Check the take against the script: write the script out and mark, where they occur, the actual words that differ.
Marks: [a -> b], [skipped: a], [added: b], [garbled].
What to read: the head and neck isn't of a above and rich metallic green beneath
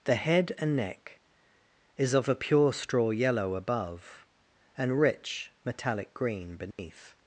the head and neck [isn't -> is] of a [added: pure straw yellow] above and rich metallic green beneath